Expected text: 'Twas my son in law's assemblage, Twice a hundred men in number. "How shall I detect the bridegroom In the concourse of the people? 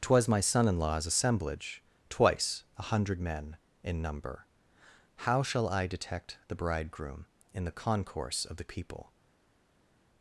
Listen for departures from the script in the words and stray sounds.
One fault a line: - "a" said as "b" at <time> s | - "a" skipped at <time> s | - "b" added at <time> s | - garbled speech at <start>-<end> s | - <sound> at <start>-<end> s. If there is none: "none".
none